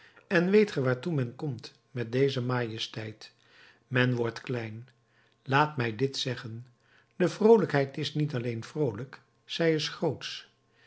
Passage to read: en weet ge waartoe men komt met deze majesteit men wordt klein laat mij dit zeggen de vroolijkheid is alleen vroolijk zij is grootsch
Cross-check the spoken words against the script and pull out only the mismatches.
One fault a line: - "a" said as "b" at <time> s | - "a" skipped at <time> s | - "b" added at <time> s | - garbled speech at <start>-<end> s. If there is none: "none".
- "niet" added at 8.1 s